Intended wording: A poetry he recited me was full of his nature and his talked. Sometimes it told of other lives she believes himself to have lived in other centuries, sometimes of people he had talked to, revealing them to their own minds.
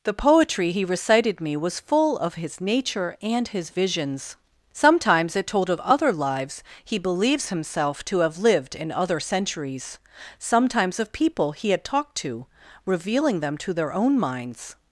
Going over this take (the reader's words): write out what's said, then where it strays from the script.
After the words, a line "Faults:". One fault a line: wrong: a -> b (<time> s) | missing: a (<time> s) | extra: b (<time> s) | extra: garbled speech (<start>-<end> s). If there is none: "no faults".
The poetry he recited me was full of his nature and his visions. Sometimes it told of other lives he believes himself to have lived in other centuries, sometimes of people he had talked to, revealing them to their own minds.
Faults:
wrong: A -> The (0.0 s)
wrong: talked -> visions (3.7 s)
wrong: she -> he (6.9 s)